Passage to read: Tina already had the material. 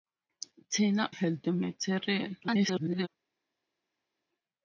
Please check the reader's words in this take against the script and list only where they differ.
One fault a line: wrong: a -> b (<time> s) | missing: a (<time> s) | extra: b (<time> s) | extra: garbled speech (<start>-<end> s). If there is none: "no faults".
missing: already (1.1 s)
extra: garbled speech (2.4-3.1 s)